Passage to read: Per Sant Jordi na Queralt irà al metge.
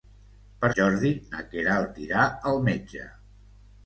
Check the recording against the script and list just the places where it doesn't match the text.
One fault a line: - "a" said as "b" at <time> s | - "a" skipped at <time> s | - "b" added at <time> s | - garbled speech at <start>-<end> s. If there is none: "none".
- "Sant" skipped at 0.7 s